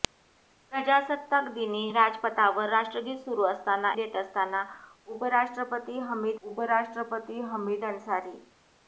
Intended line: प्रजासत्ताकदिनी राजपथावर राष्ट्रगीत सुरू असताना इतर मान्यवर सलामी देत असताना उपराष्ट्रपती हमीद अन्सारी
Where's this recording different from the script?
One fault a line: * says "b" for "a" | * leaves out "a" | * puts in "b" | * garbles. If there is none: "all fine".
* says "देत असताना उपराष्ट्रपती हमीद" for "इतर मान्यवर सलामी देत असताना"